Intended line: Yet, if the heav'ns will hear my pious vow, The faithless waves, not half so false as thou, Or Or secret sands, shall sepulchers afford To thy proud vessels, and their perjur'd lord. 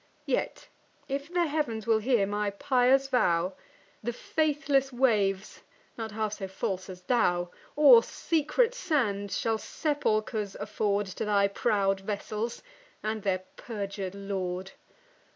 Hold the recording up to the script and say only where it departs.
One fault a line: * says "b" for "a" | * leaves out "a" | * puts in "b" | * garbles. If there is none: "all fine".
* leaves out "Or"